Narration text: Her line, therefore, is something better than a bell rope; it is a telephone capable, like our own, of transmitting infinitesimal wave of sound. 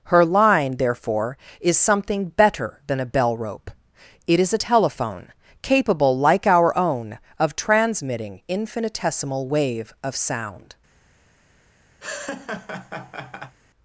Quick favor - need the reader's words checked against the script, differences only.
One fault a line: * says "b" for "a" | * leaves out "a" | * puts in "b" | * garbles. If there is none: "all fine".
all fine